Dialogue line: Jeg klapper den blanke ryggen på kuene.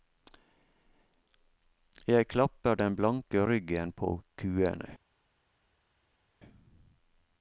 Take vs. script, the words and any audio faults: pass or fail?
pass